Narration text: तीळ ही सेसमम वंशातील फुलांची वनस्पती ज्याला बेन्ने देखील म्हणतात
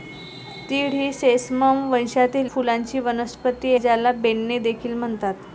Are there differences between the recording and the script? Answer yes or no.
no